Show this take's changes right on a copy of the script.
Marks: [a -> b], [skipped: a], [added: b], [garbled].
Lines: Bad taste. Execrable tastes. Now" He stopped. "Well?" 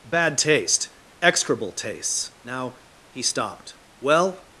Bad taste. Execrable tastes. Now" He stopped. "Well?"